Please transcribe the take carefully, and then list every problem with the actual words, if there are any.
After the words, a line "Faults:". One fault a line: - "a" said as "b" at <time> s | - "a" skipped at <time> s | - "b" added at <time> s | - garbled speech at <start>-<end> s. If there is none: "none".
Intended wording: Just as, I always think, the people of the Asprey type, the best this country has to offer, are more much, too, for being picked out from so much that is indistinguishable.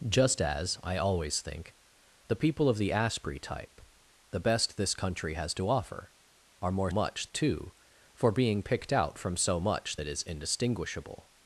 Just as, I always think, the people of the Asprey type, the best this country has to offer, are more much, too, for being picked out from so much that is indistinguishable.
Faults:
none